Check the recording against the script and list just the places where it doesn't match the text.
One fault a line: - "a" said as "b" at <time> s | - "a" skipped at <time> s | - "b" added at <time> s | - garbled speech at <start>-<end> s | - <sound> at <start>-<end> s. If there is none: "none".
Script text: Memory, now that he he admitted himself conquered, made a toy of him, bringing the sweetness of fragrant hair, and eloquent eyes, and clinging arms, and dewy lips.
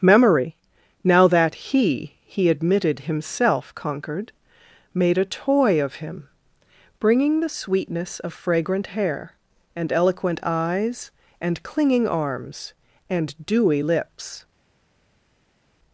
none